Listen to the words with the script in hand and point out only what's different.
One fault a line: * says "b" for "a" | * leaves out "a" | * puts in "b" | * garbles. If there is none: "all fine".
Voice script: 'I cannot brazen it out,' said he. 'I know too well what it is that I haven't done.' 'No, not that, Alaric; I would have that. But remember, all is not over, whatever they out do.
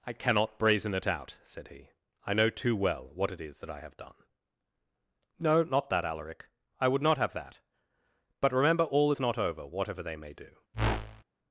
* says "have" for "haven't"
* puts in "not"
* says "may" for "out"